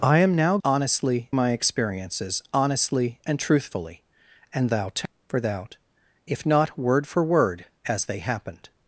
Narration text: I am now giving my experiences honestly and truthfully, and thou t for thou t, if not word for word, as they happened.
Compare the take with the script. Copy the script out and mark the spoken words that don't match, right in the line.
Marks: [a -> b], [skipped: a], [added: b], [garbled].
I am now [giving -> honestly] my experiences honestly and truthfully, and thou t for thou t, if not word for word, as they happened.